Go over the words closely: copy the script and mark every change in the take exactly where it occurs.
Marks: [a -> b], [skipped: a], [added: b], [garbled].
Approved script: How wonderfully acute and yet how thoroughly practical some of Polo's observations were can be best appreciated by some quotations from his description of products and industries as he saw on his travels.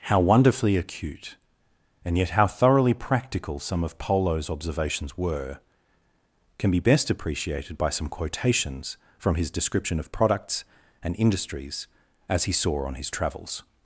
How wonderfully acute and yet how thoroughly practical some of Polo's observations were can be best appreciated by some quotations from his description of products and industries as he saw on his travels.